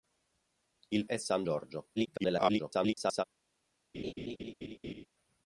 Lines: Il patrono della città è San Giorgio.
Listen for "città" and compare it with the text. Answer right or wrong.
wrong